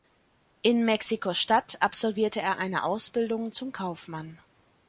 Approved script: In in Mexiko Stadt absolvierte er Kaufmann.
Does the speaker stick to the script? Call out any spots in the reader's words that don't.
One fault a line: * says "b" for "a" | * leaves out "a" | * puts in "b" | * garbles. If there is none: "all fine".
* leaves out "in"
* puts in "eine Ausbildung zum"